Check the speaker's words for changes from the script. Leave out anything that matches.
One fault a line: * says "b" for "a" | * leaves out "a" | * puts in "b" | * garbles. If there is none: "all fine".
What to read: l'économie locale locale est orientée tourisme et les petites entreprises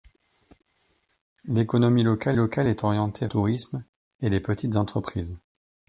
all fine